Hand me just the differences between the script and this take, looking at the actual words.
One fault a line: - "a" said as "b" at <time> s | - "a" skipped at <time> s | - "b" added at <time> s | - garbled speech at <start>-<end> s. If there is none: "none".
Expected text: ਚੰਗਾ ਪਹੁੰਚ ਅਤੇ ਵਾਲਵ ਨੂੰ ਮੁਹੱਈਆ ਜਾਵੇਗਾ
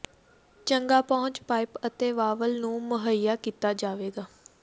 - "ਪਾਈਪ" added at 1.4 s
- "ਕੀਤਾ" added at 3.4 s